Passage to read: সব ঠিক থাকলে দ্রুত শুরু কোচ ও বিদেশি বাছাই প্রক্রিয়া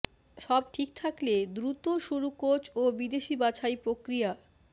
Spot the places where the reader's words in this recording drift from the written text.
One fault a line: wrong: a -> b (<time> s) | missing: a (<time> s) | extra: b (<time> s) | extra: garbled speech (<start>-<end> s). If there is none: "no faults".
no faults